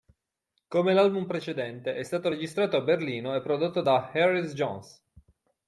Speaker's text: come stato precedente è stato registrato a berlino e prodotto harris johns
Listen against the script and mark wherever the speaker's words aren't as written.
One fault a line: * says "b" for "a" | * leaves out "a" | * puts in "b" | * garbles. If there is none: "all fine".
* says "l'album" for "stato"
* puts in "da"